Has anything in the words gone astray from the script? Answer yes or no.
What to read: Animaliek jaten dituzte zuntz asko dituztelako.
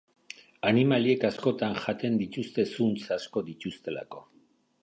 yes